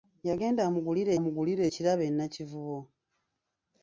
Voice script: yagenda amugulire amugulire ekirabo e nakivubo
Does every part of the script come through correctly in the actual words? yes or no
yes